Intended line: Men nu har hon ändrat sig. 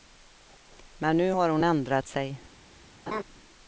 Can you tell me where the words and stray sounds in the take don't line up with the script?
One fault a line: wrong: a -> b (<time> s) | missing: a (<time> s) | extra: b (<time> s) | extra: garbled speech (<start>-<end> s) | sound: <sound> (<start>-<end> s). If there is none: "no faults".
sound: laugh (3.1-3.2 s)